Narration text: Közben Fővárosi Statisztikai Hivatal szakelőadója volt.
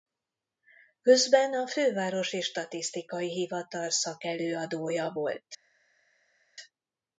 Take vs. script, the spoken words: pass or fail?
fail